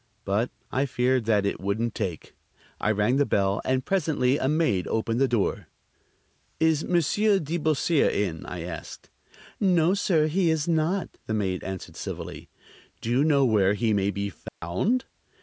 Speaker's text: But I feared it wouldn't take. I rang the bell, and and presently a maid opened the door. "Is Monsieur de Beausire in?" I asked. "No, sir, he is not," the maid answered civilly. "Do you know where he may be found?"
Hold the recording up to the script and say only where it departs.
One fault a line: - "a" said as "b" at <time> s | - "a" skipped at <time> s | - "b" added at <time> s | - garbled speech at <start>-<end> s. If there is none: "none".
- "that" added at 1.2 s
- "and" skipped at 3.9 s